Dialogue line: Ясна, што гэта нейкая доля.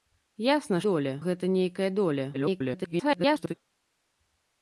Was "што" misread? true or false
true